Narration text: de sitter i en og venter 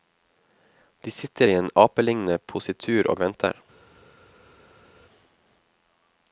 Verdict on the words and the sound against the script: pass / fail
fail